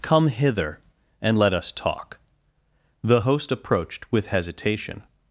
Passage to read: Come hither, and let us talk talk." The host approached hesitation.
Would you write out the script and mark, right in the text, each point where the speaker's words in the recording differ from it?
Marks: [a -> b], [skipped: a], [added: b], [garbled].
Come hither, and let us talk [skipped: talk."] The host approached [added: with] hesitation.